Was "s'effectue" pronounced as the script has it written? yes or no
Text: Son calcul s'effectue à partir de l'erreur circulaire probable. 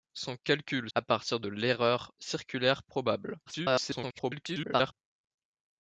no